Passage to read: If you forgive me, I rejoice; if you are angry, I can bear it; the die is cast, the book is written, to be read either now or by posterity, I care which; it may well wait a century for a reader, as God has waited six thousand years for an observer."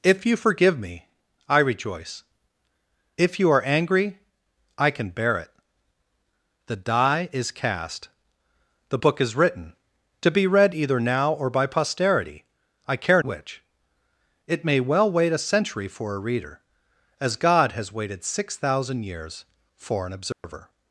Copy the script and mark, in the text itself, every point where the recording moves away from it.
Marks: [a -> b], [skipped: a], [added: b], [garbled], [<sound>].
If you forgive me, I rejoice; if you are angry, I can bear it; the die is cast, the book is written, to be read either now or by posterity, I care which; it may well wait a century for a reader, as God has waited six thousand years for an observer." [dropout]